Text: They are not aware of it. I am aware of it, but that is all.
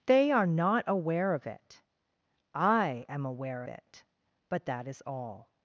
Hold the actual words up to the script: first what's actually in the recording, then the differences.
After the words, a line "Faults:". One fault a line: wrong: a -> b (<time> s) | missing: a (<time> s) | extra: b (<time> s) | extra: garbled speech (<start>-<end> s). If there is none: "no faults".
They are not aware of it. I am aware it, but that is all.
Faults:
missing: of (3.6 s)